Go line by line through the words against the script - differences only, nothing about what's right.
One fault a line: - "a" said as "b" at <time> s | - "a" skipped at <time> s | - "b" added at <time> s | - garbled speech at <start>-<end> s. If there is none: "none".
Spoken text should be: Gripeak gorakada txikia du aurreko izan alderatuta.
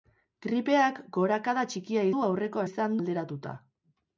none